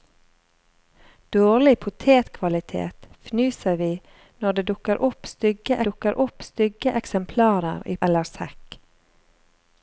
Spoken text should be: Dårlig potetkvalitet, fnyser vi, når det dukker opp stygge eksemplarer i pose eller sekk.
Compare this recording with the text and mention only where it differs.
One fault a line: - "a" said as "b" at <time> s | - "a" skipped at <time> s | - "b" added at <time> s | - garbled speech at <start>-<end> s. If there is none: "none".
- "dukker opp stygge" added at 5.9 s
- "pose" skipped at 8.0 s